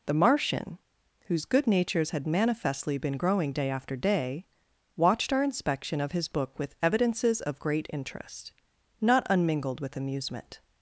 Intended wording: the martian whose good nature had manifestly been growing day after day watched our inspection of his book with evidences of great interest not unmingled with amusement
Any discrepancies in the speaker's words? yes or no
yes